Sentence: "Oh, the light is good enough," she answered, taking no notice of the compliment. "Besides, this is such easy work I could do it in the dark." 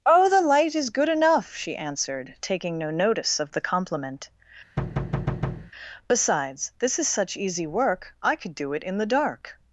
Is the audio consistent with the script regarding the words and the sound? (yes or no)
no